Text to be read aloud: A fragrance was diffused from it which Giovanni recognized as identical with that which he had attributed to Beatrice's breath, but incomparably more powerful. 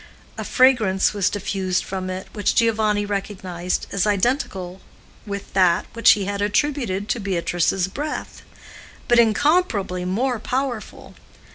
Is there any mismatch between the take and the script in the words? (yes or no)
no